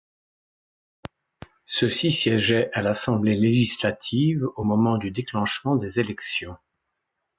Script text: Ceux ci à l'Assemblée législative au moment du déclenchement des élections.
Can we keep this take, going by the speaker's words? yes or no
no